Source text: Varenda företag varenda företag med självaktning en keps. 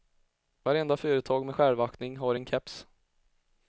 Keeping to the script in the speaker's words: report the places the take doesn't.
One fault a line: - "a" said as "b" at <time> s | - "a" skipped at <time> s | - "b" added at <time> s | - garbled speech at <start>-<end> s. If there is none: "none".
- "varenda företag" skipped at 1.5 s
- "har" added at 2.2 s